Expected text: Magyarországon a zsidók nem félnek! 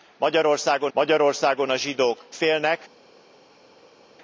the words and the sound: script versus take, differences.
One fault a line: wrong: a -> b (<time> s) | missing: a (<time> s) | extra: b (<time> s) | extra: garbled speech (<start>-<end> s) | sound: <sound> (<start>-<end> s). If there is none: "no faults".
extra: magyarországon (0.9 s)
missing: nem (2.2 s)